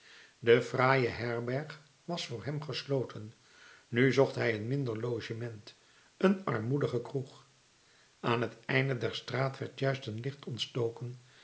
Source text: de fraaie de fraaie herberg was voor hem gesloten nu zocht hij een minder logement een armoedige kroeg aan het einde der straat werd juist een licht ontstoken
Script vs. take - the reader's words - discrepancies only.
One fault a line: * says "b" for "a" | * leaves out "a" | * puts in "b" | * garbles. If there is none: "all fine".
* leaves out "de fraaie"